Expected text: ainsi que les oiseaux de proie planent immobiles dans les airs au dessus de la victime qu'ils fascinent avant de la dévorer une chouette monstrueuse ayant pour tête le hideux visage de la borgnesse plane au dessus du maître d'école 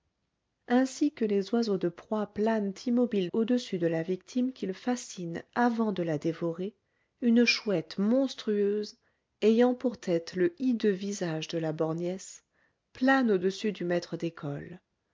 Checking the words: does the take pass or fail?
fail